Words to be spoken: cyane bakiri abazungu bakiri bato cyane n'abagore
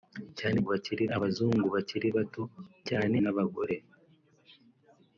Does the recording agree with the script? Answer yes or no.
yes